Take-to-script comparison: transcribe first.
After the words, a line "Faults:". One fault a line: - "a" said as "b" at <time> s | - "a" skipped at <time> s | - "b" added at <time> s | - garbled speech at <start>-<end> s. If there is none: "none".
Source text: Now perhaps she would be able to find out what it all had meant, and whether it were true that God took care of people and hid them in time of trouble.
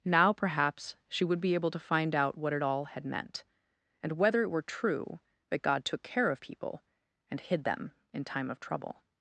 Now perhaps she would be able to find out what it all had meant, and whether it were true that God took care of people and hid them in time of trouble.
Faults:
none